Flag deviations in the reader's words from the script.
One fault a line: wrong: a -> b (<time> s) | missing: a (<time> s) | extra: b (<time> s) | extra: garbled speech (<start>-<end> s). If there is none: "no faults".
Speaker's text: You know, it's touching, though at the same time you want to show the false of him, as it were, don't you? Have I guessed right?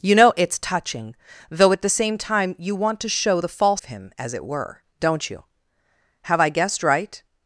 no faults